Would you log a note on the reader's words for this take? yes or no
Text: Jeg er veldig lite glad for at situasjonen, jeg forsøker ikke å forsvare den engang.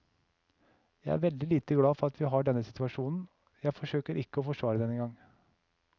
yes